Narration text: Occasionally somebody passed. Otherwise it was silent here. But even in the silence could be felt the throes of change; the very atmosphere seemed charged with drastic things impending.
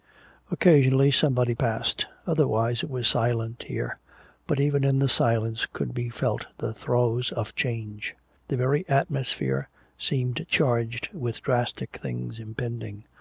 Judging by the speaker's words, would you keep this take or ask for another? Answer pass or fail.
pass